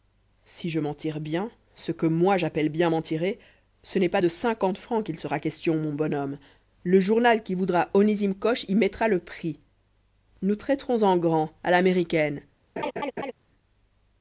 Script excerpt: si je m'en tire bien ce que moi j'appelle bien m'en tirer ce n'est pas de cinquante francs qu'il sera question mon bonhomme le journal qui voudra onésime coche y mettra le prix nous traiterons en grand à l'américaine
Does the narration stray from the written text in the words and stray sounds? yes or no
yes